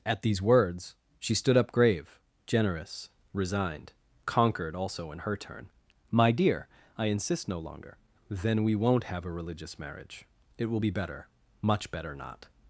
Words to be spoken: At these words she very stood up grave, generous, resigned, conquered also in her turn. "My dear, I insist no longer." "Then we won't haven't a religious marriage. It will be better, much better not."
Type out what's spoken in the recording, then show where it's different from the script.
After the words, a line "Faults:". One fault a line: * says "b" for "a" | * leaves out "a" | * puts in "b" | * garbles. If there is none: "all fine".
At these words she stood up grave, generous, resigned, conquered also in her turn. "My dear, I insist no longer." "Then we won't have a religious marriage. It will be better, much better not."
Faults:
* leaves out "very"
* says "have" for "haven't"